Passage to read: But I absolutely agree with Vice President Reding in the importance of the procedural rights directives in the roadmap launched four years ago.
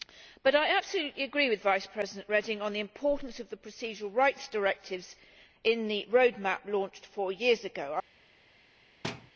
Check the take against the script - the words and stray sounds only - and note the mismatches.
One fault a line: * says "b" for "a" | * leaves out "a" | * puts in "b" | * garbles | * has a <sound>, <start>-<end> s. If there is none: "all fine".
* says "on" for "in"
* has a thud, 9.0-9.3 s